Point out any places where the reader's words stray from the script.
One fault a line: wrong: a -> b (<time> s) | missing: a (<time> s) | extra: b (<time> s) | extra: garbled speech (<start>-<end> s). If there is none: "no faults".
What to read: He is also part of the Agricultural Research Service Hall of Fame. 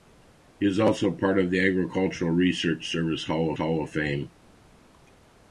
extra: Hall (3.6 s)